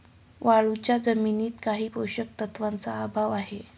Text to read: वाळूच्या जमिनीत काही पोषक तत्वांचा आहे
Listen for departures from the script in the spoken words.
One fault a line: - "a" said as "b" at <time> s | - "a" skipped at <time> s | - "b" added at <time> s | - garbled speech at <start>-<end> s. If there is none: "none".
- "अभाव" added at 3.0 s